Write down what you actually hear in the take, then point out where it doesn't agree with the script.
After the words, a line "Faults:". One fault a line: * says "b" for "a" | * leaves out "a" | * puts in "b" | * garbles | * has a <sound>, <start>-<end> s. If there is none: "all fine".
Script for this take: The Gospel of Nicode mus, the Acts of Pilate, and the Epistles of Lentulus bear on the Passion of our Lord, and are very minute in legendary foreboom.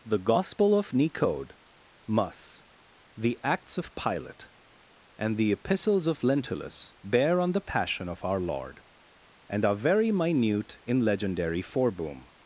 The Gospel of Nicode mus, the Acts of Pilate, and the Epistles of Lentulus bear on the Passion of our Lord, and are very minute in legendary foreboom.
Faults:
all fine